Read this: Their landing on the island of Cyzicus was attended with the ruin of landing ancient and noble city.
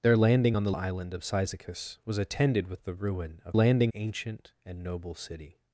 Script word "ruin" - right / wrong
right